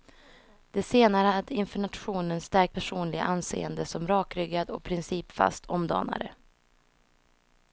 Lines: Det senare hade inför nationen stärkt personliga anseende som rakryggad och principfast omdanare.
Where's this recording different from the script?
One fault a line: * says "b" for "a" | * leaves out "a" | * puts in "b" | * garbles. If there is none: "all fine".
all fine